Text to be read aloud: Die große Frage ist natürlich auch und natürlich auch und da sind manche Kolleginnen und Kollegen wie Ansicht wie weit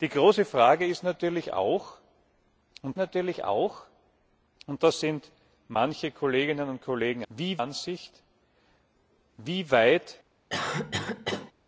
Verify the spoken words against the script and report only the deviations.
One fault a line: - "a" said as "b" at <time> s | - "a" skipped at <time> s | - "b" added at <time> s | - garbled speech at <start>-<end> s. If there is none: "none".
none